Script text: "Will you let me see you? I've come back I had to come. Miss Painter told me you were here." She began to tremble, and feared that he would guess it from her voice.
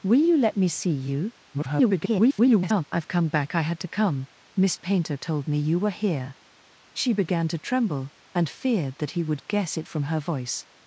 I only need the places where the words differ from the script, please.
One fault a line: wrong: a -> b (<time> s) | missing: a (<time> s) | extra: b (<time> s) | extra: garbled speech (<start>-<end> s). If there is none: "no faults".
extra: garbled speech (1.5-2.8 s)